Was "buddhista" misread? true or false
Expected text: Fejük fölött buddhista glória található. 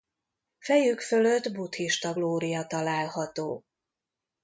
false